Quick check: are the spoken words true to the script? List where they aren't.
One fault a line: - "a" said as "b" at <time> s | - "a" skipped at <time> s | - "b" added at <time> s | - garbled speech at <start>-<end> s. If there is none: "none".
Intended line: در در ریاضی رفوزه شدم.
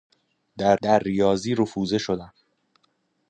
none